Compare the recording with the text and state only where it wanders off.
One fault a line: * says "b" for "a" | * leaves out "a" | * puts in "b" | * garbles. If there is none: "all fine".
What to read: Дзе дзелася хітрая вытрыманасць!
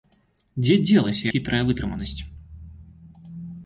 all fine